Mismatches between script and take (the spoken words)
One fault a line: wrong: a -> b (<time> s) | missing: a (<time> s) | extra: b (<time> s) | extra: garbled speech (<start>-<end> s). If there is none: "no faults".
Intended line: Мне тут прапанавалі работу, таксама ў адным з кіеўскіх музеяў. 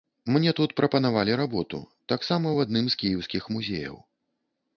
no faults